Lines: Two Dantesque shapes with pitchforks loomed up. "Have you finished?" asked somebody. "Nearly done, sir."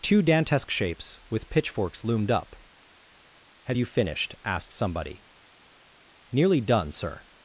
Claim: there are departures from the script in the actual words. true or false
false